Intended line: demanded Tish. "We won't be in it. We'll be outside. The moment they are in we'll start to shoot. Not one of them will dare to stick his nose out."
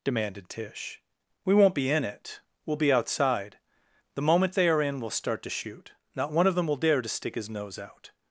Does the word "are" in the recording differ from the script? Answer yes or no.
no